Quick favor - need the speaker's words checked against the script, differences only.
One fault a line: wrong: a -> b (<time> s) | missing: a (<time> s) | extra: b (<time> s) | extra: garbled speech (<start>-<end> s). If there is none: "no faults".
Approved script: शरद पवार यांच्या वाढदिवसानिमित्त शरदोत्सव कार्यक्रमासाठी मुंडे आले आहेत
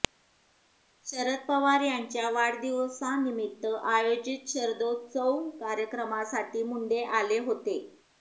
extra: आयोजित (3.9 s)
wrong: आहेत -> होते (7.4 s)